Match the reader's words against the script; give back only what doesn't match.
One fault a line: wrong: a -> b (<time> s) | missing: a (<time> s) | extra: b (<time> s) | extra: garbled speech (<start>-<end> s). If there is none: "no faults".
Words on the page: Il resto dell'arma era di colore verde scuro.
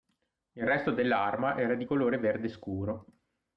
no faults